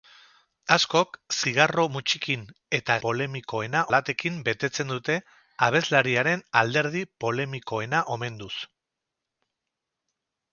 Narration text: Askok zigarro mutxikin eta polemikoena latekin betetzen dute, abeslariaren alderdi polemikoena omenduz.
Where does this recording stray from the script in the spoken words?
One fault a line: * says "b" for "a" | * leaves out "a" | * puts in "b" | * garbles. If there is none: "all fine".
all fine